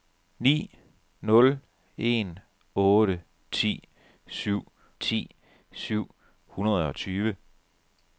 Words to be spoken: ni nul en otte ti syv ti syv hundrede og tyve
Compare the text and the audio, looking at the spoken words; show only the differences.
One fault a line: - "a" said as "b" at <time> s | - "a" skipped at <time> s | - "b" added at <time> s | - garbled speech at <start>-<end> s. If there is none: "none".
none